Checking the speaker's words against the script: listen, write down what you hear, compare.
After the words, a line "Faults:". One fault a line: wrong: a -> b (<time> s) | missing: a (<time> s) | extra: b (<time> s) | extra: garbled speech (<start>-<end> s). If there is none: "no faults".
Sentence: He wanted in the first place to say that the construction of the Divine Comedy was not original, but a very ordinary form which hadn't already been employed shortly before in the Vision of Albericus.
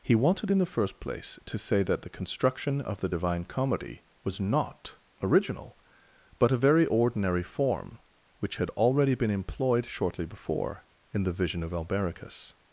He wanted in the first place to say that the construction of the Divine Comedy was not original, but a very ordinary form which had already been employed shortly before in the Vision of Albericus.
Faults:
wrong: hadn't -> had (8.6 s)